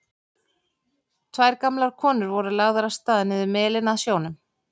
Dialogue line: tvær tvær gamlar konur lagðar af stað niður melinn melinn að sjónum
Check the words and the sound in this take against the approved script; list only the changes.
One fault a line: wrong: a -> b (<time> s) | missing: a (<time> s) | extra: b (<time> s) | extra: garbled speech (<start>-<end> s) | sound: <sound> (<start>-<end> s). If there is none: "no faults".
missing: tvær (1.6 s)
extra: voru (2.4 s)
missing: melinn (3.9 s)